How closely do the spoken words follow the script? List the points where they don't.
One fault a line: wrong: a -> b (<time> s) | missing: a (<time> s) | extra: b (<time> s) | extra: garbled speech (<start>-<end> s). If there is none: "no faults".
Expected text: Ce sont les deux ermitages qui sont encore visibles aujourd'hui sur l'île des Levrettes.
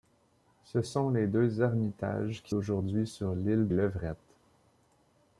missing: sont encore visibles (2.5 s)
missing: des (3.7 s)